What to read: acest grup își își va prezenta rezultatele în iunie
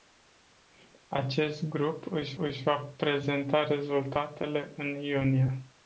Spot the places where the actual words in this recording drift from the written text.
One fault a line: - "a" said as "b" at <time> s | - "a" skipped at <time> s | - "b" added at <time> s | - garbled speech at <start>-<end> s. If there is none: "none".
none